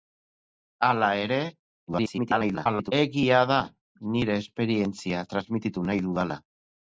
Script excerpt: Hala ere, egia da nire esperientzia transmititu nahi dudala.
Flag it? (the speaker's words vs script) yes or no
yes